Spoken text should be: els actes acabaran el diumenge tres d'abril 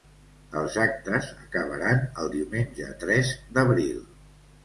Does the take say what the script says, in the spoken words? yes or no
yes